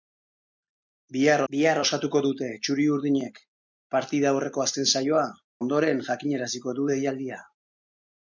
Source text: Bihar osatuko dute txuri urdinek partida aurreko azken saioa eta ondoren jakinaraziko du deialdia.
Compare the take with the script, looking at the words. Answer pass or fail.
fail